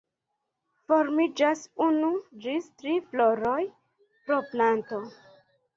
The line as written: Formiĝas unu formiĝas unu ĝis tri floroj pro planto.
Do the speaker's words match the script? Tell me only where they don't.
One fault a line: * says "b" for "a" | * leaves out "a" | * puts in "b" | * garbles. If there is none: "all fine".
* leaves out "formiĝas unu"